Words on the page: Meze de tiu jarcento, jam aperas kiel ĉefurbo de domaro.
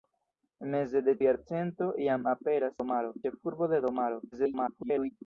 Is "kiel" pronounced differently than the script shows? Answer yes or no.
yes